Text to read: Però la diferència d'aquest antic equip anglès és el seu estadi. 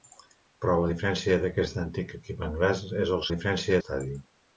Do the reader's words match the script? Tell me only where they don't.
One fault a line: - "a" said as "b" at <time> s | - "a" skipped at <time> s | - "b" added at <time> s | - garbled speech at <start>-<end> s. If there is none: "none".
- "seu" said as "diferència" at 3.3 s